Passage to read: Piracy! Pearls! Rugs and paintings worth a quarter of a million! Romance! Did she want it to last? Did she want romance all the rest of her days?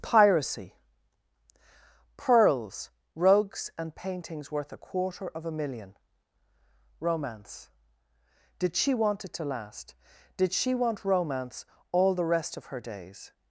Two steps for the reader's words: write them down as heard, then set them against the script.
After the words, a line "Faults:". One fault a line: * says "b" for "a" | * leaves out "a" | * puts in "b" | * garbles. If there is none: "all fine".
Piracy! Pearls! Rugs and paintings worth a quarter of a million! Romance! Did she want it to last? Did she want romance all the rest of her days?
Faults:
all fine